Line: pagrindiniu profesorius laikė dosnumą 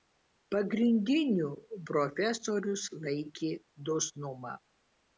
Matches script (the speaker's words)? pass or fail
pass